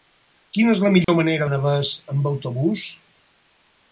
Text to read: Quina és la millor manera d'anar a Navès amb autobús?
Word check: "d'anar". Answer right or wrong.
wrong